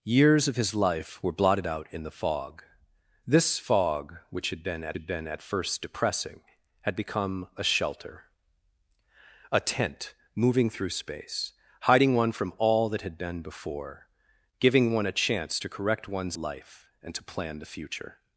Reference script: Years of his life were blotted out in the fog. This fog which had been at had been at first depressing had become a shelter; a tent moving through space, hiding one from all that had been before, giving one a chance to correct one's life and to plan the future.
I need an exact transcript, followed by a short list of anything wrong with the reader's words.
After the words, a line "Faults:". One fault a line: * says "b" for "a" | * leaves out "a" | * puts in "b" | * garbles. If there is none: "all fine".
Years of his life were blotted out in the fog. This fog which had been at had been at first depressing had become a shelter; a tent moving through space, hiding one from all that had been before, giving one a chance to correct one's life and to plan the future.
Faults:
all fine